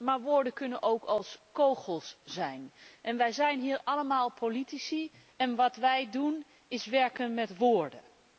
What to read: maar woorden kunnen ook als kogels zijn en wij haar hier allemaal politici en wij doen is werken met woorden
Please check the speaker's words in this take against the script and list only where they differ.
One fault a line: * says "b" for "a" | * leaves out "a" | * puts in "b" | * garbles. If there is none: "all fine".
* says "zijn" for "haar"
* puts in "wat"